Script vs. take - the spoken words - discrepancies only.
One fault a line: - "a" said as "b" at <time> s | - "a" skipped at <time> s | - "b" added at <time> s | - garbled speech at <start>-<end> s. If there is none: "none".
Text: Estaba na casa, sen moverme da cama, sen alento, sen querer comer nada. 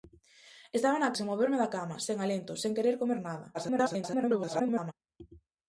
- "casa" skipped at 1.1 s
- garbled speech at 3.5-4.9 s